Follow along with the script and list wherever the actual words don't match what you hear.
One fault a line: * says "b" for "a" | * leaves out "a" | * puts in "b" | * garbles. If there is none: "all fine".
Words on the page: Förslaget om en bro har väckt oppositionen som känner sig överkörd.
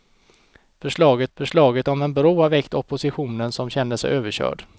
* puts in "förslaget"